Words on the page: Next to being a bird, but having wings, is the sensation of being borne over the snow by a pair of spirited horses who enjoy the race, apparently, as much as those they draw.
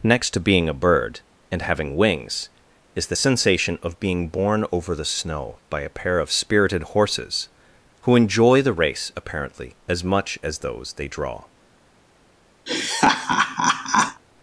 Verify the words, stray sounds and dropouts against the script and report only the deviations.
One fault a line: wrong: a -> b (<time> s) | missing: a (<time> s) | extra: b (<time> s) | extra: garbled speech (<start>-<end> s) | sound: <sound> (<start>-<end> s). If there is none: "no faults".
wrong: but -> and (1.5 s)
sound: laugh (12.7-14.2 s)